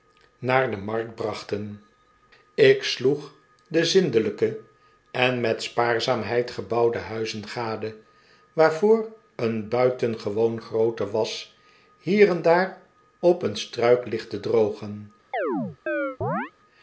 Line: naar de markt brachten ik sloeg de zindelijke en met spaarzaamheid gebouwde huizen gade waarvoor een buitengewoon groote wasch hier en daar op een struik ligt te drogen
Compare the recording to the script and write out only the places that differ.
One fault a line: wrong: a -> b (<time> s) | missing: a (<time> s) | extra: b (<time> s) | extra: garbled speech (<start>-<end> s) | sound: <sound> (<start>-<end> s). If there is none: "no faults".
sound: chirp (15.3-16.5 s)